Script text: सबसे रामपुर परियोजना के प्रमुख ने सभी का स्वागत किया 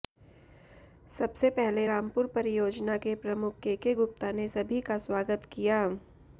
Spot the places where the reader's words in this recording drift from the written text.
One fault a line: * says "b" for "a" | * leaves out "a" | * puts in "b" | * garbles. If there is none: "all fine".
* puts in "पहले"
* puts in "केके गुप्ता"